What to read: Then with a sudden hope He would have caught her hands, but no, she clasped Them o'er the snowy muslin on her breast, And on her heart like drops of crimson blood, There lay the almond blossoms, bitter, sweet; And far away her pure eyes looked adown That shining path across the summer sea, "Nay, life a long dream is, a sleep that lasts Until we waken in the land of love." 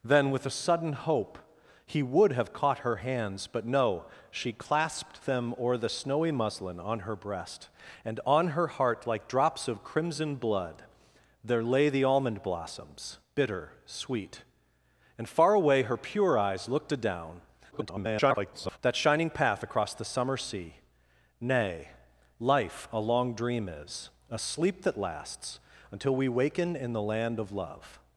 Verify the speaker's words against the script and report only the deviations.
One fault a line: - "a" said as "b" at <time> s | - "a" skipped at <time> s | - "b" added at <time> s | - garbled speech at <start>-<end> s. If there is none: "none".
- garbled speech at 17.7-18.8 s